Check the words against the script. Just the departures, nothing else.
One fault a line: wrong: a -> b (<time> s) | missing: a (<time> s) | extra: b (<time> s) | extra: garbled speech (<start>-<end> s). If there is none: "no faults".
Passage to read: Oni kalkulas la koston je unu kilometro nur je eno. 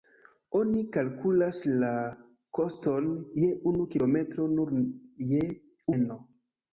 no faults